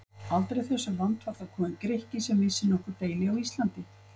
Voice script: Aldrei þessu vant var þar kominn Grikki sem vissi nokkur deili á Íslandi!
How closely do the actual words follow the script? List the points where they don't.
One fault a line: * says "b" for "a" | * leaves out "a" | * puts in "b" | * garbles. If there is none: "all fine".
all fine